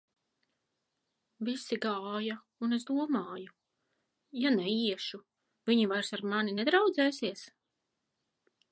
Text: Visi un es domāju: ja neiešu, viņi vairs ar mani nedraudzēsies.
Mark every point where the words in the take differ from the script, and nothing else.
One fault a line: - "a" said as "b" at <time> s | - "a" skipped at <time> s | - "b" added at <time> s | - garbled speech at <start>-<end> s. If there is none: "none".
- "gāja" added at 1.8 s